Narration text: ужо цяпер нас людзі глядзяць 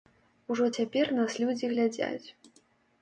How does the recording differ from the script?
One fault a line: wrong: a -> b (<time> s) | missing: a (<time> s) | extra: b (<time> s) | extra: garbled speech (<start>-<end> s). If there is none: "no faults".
no faults